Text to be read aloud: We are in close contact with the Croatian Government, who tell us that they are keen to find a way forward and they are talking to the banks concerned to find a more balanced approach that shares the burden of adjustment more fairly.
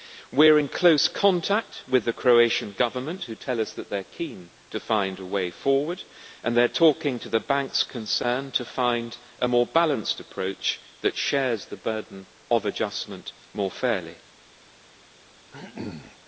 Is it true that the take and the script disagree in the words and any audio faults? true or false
true